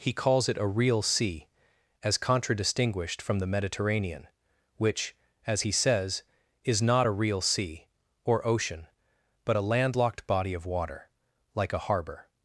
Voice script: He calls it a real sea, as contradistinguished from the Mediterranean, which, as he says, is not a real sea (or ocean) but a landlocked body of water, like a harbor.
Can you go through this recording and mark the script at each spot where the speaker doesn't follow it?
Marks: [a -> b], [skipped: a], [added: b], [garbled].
He calls it a real sea, as contradistinguished from the Mediterranean, which, as he says, is not a real sea (or ocean) but a landlocked body of water, like a harbor.